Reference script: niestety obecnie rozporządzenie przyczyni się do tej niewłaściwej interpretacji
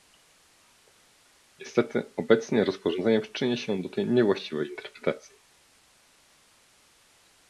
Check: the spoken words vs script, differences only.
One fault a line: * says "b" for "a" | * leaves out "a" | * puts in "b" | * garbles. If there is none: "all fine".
all fine